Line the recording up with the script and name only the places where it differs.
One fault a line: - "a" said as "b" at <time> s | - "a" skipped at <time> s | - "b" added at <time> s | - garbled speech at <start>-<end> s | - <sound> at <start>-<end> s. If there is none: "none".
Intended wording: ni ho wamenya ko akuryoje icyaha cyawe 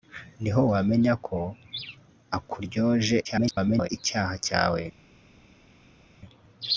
- garbled speech at 3.2-3.9 s